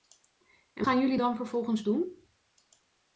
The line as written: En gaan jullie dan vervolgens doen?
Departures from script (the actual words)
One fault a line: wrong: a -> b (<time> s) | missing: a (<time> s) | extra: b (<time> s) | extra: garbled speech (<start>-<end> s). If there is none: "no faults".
no faults